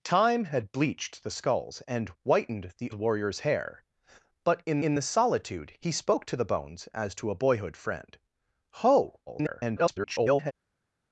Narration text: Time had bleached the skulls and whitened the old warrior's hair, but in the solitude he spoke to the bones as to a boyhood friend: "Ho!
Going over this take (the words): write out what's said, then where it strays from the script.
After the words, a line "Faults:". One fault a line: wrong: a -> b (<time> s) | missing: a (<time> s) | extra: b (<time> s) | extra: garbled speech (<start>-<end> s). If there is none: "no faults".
Time had bleached the skulls and whitened the warrior's hair, but in in the solitude he spoke to the bones as to a boyhood friend: "Ho! [garbled]
Faults:
missing: old (2.9 s)
extra: in (4.8 s)
extra: garbled speech (9.3-10.5 s)